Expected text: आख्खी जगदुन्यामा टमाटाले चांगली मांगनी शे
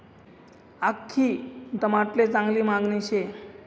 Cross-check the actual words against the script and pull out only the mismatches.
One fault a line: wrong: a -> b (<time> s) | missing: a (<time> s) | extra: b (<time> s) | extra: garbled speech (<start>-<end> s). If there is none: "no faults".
missing: जगदुन्यामा (1.3 s)